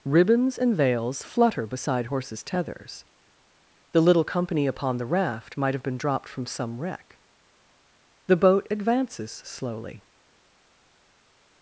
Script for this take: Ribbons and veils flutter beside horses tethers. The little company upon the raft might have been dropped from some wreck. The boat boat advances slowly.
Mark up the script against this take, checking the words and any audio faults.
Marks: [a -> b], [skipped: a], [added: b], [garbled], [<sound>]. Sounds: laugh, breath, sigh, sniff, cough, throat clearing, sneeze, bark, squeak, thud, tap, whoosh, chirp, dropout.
Ribbons and veils flutter beside horses tethers. The little company upon the raft might have been dropped from some wreck. The boat [skipped: boat] advances slowly.